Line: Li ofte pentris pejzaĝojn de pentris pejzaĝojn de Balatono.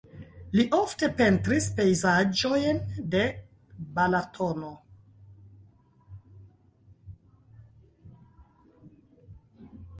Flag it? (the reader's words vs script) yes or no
yes